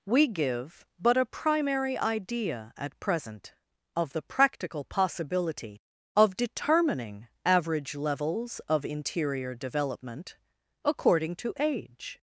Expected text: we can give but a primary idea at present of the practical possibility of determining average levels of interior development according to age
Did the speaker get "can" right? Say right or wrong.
wrong